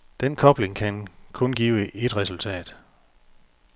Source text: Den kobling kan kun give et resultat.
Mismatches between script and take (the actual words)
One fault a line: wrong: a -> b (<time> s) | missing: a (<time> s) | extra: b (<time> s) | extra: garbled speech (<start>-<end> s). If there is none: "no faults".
no faults